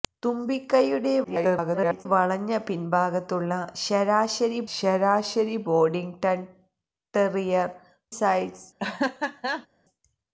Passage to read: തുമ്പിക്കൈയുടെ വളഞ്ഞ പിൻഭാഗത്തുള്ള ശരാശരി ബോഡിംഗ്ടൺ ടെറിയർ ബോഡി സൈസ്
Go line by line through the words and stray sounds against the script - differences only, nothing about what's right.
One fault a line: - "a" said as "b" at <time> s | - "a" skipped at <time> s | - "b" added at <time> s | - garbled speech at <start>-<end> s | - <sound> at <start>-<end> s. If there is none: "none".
- garbled speech at 1.2-2.1 s
- "ശരാശരി" added at 4.8 s
- "ബോഡി" skipped at 7.7 s
- laugh at 8.8-9.7 s